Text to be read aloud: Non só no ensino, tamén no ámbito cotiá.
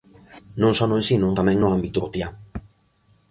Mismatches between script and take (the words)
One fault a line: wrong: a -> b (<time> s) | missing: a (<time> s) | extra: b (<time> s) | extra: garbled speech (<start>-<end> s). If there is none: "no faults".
no faults